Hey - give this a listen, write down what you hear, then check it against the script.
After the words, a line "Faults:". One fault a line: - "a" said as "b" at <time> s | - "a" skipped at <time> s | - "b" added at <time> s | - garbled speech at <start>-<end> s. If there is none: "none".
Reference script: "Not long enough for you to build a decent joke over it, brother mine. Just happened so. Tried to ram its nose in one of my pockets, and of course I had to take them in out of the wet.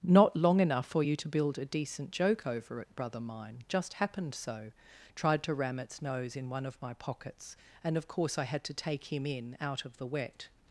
"Not long enough for you to build a decent joke over it, brother mine. Just happened so. Tried to ram its nose in one of my pockets, and of course I had to take him in out of the wet.
Faults:
- "them" said as "him" at 9.1 s